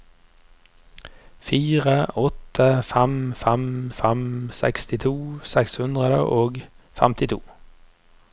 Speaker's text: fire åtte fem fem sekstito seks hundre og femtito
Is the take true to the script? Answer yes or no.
no